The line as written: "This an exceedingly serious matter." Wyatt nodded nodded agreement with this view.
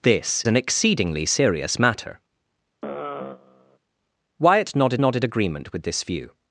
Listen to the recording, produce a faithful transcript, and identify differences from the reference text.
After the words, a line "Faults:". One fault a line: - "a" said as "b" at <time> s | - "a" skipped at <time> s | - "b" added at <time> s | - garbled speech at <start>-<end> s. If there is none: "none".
"This an exceedingly serious matter." Wyatt nodded nodded agreement with this view.
Faults:
none